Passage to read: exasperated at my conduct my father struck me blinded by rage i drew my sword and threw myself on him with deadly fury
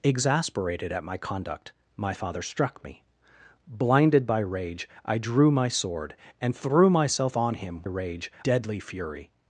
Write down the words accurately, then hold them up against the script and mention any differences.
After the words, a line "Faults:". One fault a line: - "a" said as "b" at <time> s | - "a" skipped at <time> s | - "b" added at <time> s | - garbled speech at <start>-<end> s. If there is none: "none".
exasperated at my conduct my father struck me blinded by rage i drew my sword and threw myself on him rage deadly fury
Faults:
- "with" said as "rage" at 7.8 s